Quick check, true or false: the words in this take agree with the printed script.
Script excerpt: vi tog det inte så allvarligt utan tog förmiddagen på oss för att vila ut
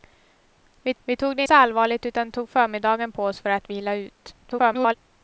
false